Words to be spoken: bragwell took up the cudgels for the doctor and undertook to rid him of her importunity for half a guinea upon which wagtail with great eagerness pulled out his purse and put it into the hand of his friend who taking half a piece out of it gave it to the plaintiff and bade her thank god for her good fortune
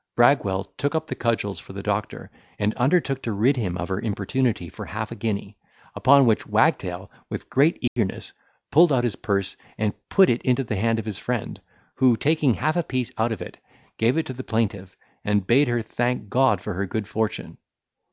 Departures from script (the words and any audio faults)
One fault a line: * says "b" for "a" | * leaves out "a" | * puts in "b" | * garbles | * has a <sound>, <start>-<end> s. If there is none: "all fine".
* has a dropout, 7.9-8.0 s